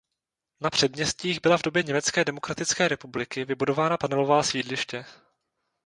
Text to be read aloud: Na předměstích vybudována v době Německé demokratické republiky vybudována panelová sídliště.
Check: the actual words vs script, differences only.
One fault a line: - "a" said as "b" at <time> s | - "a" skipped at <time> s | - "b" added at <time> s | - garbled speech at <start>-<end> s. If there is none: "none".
- "vybudována" said as "byla" at 1.4 s